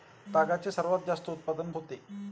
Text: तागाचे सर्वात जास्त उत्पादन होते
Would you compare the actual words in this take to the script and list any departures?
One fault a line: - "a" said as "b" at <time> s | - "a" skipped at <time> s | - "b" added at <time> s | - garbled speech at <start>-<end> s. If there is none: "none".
none